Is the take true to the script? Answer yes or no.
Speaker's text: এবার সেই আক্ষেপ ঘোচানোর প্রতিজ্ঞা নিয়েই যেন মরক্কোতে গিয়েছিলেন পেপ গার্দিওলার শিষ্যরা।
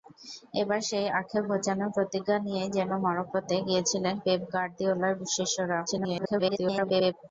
no